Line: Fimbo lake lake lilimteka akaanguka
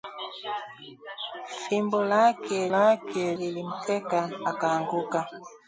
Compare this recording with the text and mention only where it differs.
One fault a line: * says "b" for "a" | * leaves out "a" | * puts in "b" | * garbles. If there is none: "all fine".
all fine